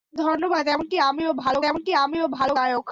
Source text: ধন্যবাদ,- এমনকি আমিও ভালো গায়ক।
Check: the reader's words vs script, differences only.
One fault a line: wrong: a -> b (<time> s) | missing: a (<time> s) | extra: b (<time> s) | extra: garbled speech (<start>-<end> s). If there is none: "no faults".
extra: এমনকি আমিও ভালো (1.6 s)